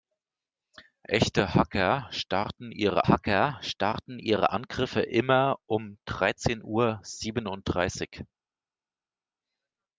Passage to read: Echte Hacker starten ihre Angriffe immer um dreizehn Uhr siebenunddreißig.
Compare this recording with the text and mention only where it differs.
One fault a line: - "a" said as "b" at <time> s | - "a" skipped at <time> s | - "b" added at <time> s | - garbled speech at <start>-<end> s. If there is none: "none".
- "Hacker starten ihre" added at 3.1 s